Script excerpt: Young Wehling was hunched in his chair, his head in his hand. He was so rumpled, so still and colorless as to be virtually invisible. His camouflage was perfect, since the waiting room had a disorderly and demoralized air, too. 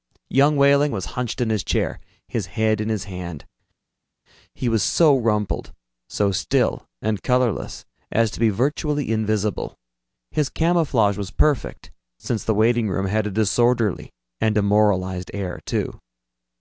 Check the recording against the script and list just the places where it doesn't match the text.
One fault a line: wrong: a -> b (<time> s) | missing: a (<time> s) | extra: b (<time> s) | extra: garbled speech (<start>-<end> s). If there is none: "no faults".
no faults